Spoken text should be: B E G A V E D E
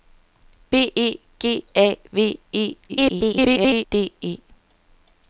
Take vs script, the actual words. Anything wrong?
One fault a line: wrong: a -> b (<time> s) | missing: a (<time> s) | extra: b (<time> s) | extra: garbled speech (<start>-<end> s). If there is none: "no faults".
extra: garbled speech (2.9-3.8 s)